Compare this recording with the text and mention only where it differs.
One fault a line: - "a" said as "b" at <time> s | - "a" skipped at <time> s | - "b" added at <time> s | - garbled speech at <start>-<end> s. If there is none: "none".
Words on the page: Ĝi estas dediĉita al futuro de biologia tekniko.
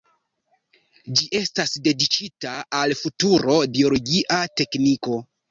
- "de" skipped at 3.6 s